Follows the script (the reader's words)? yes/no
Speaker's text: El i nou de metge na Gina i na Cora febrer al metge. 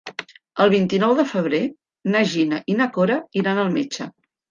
no